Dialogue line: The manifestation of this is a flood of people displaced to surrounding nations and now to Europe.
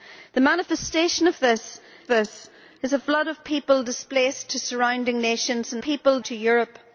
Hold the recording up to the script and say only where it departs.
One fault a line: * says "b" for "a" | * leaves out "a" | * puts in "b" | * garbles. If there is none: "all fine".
* puts in "this"
* says "people" for "now"